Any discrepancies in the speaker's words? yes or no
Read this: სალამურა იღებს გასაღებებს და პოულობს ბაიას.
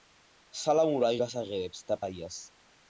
yes